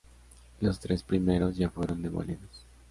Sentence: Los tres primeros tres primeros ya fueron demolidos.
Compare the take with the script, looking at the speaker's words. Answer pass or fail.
fail